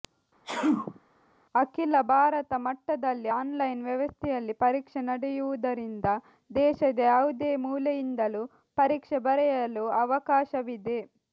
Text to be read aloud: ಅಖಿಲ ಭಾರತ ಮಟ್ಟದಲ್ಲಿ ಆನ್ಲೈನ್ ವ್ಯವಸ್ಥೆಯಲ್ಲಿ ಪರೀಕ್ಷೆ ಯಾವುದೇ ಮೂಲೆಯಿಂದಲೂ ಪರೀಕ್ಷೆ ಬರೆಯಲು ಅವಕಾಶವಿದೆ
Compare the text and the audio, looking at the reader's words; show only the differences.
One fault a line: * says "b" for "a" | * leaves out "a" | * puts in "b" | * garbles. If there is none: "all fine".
* puts in "ನಡೆಯುವುದರಿಂದ ದೇಶದ"